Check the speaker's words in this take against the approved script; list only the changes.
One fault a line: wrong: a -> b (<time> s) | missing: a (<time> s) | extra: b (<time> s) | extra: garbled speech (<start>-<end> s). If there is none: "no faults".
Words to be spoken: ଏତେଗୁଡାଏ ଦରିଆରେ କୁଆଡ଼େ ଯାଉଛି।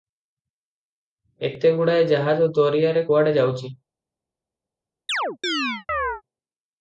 extra: ଜାହାଜ (2.1 s)